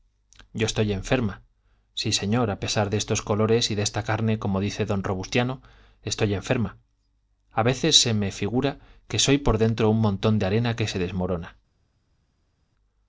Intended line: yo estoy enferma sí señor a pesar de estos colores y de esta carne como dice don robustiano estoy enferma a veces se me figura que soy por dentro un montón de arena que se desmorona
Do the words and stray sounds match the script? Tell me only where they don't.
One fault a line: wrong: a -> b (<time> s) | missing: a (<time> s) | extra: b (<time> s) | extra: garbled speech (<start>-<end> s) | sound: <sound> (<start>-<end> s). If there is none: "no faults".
no faults